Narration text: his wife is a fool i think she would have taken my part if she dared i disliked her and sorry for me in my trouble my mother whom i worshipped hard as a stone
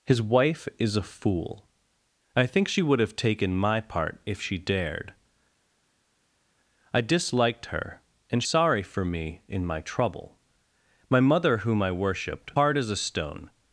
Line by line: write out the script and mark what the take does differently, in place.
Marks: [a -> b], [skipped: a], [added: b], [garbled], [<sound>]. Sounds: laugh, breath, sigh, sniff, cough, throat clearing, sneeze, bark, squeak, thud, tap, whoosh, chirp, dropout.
his wife is a fool i think she would have taken my part if she dared i disliked her and sorry for me in my trouble my mother whom i worshipped hard as a stone